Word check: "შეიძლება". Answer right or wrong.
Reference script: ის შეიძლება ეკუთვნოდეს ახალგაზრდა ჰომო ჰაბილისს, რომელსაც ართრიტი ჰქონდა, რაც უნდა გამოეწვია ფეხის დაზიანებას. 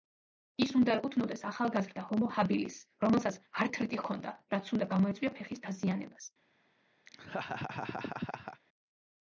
wrong